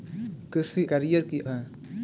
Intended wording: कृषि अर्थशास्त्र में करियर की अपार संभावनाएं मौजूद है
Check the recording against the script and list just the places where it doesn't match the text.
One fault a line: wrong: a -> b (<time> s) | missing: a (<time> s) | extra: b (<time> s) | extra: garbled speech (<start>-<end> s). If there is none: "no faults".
missing: अर्थशास्त्र में (0.8 s)
missing: अपार संभावनाएं मौजूद (1.4 s)